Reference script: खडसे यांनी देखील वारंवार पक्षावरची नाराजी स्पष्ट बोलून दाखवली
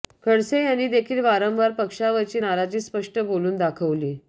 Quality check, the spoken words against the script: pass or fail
pass